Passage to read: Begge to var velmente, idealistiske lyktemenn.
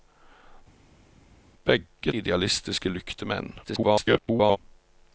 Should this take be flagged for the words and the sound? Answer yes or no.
yes